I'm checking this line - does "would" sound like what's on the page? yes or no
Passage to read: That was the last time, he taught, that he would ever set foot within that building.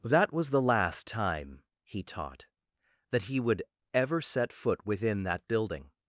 yes